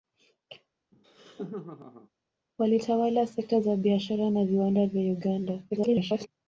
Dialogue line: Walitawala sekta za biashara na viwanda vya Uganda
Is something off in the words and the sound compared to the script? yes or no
yes